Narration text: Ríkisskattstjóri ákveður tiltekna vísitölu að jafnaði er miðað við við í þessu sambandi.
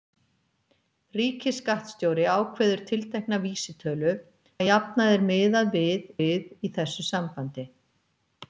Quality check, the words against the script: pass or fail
pass